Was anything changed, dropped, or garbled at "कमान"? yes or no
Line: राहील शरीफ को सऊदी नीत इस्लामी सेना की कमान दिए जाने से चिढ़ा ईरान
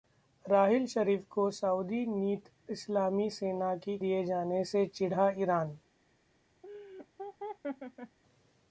yes